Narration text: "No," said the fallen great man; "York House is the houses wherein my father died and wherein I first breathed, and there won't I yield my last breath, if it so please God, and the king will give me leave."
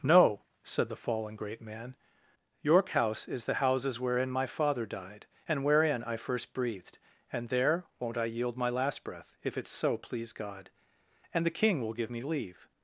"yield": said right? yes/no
yes